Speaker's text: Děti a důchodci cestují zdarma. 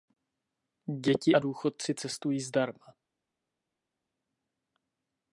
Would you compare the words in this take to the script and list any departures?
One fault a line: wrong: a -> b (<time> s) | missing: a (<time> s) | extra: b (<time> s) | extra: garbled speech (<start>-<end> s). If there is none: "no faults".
no faults